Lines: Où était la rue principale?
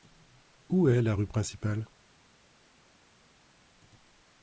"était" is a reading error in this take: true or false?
true